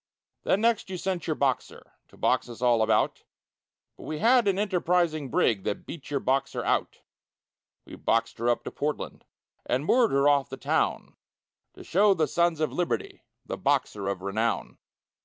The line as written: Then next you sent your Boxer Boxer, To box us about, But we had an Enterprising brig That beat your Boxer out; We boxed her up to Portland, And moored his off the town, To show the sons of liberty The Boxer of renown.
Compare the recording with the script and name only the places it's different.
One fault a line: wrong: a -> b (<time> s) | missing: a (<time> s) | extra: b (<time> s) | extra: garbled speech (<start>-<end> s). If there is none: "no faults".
missing: Boxer (1.9 s)
extra: all (2.6 s)
wrong: his -> her (10.1 s)